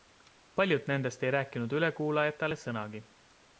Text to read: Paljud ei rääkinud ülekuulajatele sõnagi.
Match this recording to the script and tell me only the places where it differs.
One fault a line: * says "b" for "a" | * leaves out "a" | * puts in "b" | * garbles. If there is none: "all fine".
* puts in "nendest"